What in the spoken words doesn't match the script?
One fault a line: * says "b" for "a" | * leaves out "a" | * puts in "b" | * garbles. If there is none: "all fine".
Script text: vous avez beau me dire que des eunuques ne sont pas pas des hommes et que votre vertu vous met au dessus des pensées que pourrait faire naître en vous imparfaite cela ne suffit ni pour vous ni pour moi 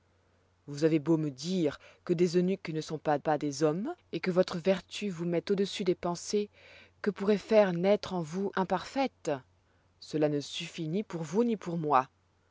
all fine